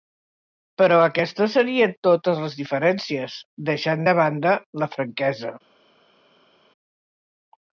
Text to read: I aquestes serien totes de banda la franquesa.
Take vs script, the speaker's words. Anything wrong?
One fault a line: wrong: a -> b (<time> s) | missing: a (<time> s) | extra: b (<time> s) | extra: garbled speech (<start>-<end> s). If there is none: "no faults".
wrong: I -> Però (0.8 s)
extra: les diferències deixant (2.5 s)